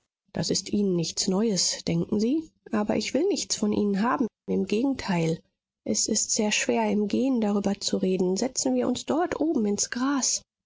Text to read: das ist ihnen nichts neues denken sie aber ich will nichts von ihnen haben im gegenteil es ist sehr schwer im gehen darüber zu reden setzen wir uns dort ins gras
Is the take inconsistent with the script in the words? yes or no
yes